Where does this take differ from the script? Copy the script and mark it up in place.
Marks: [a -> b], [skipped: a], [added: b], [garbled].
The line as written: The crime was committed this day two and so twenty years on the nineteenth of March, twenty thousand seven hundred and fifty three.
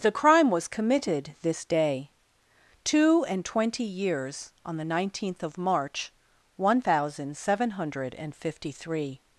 The crime was committed this day two and [skipped: so] twenty years on the nineteenth of March, [twenty -> one] thousand seven hundred and fifty three.